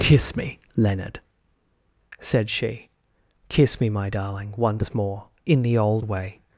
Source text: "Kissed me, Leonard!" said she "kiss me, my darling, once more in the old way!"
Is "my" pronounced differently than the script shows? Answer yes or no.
no